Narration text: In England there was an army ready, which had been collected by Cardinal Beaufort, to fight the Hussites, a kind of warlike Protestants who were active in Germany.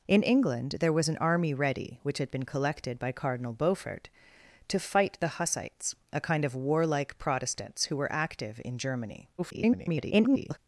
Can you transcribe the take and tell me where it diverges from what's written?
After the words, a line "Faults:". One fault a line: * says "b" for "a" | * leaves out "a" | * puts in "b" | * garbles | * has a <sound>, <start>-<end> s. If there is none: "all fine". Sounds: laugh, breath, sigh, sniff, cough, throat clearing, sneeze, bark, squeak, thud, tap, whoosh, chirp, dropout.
In England there was an army ready, which had been collected by Cardinal Beaufort, to fight the Hussites, a kind of warlike Protestants who were active in Germany. [garbled]
Faults:
* garbles